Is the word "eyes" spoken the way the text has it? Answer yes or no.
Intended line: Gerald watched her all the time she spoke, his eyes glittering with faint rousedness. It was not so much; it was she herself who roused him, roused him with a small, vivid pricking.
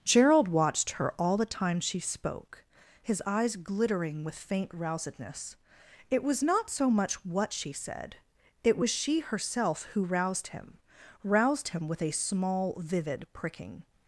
yes